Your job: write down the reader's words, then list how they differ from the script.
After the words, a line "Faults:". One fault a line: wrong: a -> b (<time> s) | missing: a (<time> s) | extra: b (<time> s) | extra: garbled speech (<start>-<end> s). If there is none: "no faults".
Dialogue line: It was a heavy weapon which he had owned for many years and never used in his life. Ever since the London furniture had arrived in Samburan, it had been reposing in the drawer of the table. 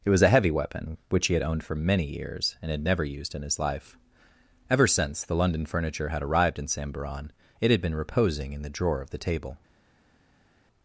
It was a heavy weapon which he had owned for many years and had never used in his life. Ever since the London furniture had arrived in Samburan, it had been reposing in the drawer of the table.
Faults:
extra: had (2.7 s)